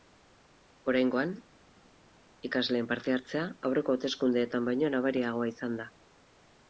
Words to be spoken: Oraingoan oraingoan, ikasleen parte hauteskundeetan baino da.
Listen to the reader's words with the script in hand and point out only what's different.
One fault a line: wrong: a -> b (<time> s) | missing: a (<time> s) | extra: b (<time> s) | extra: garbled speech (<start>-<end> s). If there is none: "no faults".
missing: oraingoan (1.3 s)
extra: hartzea aurreko (3.1 s)
extra: nabariagoa izan (5.0 s)